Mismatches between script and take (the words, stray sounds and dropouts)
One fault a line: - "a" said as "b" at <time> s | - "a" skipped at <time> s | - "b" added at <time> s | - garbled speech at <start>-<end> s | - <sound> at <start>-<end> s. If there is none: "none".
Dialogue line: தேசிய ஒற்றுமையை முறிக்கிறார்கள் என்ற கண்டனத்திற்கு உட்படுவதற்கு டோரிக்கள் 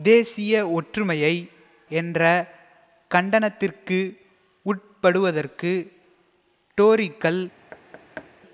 - "முறிக்கிறார்கள்" skipped at 1.3 s
- thud at 7.7-8.3 s